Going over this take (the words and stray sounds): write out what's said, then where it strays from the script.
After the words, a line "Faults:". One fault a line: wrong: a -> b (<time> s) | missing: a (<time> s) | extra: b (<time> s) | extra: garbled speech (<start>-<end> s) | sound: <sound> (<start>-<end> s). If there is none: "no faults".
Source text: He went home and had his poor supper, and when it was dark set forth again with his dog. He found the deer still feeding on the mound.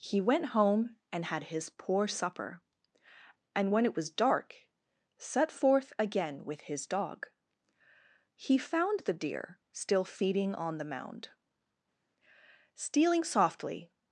He went home and had his poor supper, and when it was dark set forth again with his dog. He found the deer still feeding on the mound. Stealing softly
Faults:
extra: Stealing softly (12.7 s)